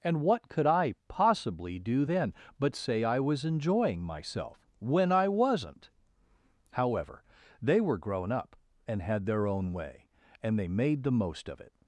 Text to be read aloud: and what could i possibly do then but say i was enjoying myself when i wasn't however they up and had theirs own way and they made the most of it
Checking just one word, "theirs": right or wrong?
wrong